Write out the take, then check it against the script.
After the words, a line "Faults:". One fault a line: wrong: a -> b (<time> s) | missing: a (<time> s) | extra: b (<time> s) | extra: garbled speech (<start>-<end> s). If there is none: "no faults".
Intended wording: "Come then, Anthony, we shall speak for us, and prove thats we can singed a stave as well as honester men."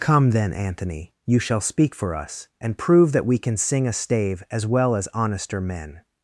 "Come then, Anthony, you shall speak for us, and prove that we can sing a stave as well as honester men."
Faults:
wrong: we -> you (1.3 s)
wrong: thats -> that (3.1 s)
wrong: singed -> sing (3.6 s)